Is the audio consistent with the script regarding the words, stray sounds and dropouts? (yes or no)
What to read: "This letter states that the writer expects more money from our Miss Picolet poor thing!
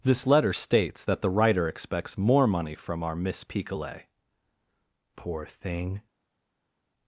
yes